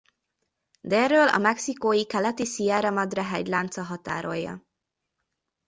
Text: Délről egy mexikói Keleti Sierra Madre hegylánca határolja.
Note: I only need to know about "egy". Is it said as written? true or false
false